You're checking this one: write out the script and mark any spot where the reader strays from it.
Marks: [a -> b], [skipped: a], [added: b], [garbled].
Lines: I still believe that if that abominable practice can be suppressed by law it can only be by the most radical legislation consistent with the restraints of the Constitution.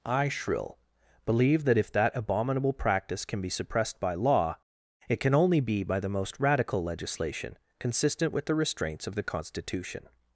I [still -> shrill] believe that if that abominable practice can be suppressed by law it can only be by the most radical legislation consistent with the restraints of the Constitution.